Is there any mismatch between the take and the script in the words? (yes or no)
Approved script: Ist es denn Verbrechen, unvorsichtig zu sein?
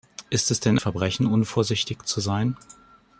no